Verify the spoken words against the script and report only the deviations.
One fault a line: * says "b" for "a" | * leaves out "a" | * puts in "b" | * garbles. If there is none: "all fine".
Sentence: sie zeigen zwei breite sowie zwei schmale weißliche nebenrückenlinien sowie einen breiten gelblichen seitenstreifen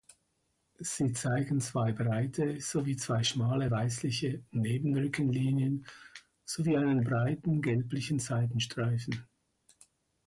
all fine